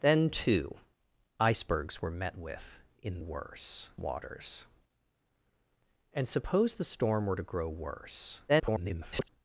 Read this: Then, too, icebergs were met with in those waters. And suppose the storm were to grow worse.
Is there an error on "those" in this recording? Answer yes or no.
yes